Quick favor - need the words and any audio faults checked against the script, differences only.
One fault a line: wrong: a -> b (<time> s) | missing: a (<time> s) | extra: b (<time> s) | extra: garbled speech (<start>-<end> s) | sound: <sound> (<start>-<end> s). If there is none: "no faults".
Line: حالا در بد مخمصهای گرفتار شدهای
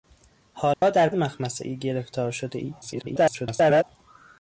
sound: dropout (0.7-0.8 s)
missing: بد (1.1 s)
extra: garbled speech (2.8-3.8 s)